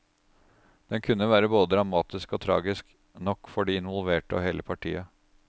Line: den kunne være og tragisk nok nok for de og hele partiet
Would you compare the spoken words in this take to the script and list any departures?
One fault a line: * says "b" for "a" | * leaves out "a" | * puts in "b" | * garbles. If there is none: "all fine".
* puts in "både dramatisk"
* leaves out "nok"
* puts in "involverte"